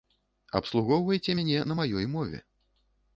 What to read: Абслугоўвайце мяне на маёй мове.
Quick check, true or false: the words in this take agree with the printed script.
true